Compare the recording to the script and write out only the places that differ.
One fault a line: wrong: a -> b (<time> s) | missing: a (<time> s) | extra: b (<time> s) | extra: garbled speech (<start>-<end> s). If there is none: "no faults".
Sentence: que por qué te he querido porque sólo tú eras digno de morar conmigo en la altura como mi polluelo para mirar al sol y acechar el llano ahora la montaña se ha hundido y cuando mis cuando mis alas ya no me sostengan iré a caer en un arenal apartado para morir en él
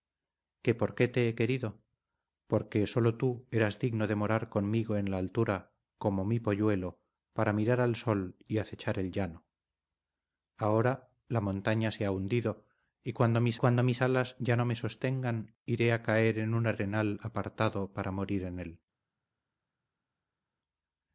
no faults